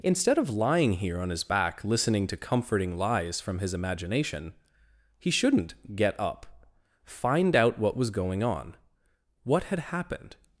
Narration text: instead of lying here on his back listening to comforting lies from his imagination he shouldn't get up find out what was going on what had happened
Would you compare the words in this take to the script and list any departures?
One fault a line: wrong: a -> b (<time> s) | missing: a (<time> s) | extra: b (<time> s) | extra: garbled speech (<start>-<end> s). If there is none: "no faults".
no faults